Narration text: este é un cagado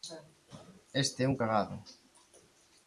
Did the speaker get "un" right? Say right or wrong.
right